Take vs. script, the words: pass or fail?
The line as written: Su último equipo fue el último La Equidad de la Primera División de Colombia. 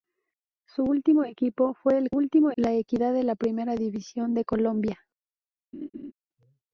pass